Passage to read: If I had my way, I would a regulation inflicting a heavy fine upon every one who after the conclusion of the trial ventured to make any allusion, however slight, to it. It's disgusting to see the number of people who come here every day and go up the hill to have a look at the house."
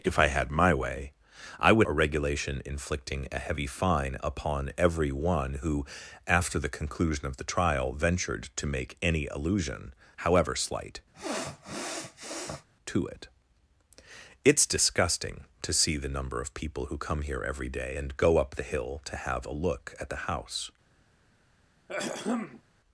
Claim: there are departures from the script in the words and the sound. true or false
true